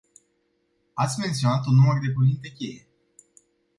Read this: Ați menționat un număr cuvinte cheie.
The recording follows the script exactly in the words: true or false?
false